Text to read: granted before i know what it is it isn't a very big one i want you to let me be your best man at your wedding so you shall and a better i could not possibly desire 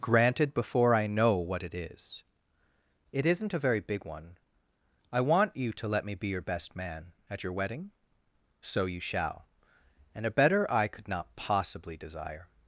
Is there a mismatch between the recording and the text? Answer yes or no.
no